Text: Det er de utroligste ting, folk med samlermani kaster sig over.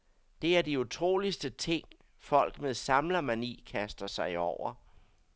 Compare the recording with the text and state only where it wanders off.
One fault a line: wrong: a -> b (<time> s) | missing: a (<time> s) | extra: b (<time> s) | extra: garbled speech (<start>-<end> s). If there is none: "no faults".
no faults